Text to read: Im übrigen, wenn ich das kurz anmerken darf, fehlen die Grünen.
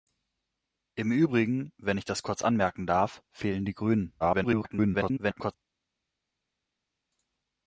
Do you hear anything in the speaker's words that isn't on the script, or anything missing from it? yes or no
yes